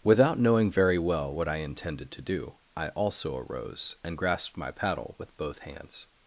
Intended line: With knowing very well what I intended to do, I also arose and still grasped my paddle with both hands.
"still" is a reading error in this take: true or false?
true